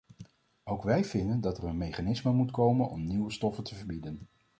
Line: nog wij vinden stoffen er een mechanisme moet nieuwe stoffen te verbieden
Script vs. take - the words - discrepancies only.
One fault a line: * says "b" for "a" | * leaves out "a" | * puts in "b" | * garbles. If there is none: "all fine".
* says "ook" for "nog"
* says "dat" for "stoffen"
* puts in "komen om"